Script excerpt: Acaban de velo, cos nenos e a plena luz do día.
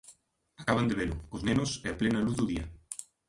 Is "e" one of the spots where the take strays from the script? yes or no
no